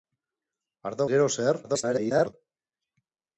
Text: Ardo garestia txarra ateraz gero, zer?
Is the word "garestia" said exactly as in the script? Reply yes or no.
no